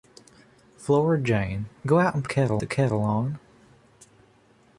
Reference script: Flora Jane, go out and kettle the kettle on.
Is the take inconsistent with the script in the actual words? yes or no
no